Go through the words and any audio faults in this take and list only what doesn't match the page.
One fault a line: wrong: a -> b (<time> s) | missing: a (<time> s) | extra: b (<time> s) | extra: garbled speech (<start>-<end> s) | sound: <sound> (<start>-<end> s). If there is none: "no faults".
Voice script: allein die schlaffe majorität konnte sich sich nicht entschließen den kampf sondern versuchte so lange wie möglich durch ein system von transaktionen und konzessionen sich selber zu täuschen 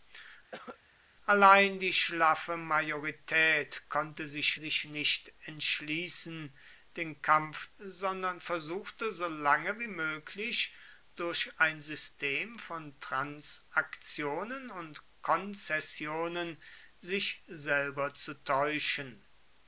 sound: cough (0.5-0.8 s)